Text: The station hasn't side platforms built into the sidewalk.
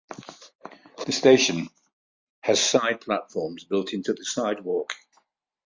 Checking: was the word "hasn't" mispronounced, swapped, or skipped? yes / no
yes